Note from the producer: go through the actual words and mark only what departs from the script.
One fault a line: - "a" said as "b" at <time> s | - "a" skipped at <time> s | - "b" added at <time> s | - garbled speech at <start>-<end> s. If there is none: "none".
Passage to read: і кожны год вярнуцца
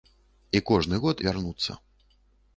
none